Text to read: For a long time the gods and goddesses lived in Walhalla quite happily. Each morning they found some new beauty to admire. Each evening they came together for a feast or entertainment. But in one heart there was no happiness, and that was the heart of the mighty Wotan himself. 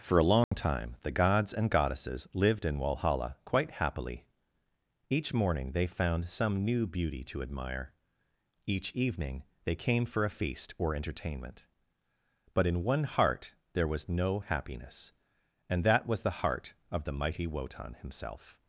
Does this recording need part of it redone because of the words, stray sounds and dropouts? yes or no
yes